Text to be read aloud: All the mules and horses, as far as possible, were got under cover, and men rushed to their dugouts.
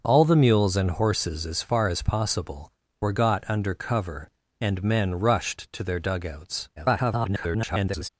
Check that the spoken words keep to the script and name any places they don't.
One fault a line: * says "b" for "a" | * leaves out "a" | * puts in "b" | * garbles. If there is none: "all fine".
* garbles